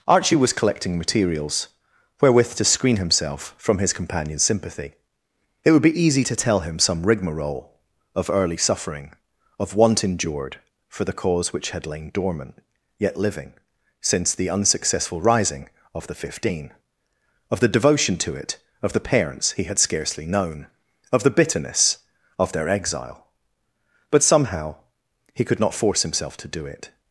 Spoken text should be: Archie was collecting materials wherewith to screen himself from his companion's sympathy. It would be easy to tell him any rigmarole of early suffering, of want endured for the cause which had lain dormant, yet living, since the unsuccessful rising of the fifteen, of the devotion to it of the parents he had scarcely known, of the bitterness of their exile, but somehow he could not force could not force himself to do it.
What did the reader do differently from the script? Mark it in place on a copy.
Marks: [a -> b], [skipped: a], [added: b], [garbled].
Archie was collecting materials wherewith to screen himself from his companion's sympathy. It would be easy to tell him [any -> some] rigmarole of early suffering, of want endured for the cause which had lain dormant, yet living, since the unsuccessful rising of the fifteen, of the devotion to it of the parents he had scarcely known, of the bitterness of their exile, but somehow he could not force [skipped: could not force] himself to do it.